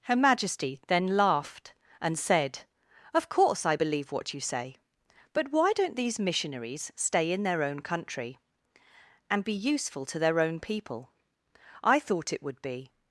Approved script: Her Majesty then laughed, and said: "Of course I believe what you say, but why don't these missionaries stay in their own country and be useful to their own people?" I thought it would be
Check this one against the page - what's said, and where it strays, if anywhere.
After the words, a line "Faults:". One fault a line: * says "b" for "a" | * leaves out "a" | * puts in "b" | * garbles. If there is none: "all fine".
Her Majesty then laughed, and said: "Of course I believe what you say, but why don't these missionaries stay in their own country and be useful to their own people?" I thought it would be
Faults:
all fine